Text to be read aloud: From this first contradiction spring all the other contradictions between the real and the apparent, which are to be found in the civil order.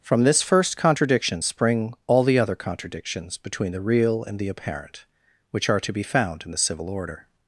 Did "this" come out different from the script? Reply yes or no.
no